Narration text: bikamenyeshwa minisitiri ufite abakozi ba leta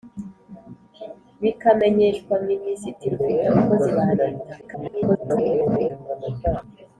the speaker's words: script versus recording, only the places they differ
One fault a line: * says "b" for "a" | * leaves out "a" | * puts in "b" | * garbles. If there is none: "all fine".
* garbles